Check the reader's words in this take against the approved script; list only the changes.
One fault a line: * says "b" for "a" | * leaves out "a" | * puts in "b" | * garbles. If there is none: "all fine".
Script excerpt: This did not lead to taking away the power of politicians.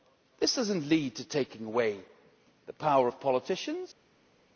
* says "does" for "did"